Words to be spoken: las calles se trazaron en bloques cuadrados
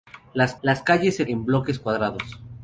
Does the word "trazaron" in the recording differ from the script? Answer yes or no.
yes